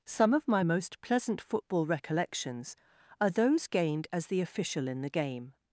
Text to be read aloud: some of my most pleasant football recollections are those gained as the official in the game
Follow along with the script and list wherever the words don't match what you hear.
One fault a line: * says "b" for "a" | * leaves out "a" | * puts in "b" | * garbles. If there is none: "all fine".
all fine